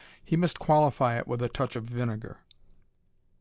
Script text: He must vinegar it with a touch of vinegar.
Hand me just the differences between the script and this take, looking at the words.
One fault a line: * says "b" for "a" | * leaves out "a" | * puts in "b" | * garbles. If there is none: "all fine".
* says "qualify" for "vinegar"